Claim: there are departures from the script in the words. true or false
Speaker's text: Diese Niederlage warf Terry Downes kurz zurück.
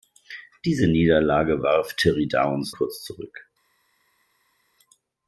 false